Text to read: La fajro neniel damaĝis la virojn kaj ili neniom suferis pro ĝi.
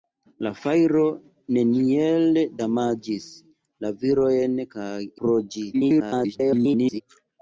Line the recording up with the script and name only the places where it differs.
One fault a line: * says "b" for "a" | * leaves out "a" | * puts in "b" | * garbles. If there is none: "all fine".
* leaves out "ili neniom suferis"
* garbles